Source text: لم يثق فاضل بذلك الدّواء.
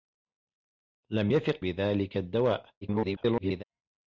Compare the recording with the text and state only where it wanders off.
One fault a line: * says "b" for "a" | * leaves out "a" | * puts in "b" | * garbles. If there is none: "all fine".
* leaves out "فاضل"
* garbles